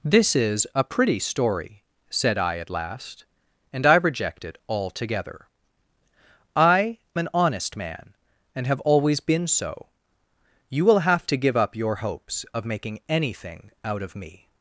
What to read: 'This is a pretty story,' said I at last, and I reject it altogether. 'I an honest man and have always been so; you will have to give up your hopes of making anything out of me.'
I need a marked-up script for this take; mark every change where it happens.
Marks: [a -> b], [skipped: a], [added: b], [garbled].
'This is a pretty story,' said I at last, and I reject it altogether. 'I an honest man and have always been so; you will have to give up your hopes of making anything out of me.'